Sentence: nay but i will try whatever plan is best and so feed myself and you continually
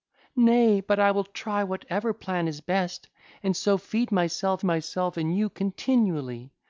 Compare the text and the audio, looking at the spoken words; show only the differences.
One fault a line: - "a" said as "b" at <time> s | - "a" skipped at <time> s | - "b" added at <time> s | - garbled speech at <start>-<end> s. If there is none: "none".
- "myself" added at 4.6 s